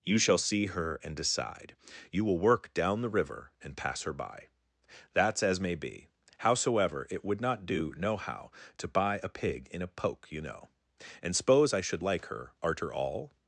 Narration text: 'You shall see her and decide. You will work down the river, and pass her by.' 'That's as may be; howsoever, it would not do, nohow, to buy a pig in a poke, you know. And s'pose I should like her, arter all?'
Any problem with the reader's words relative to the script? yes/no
no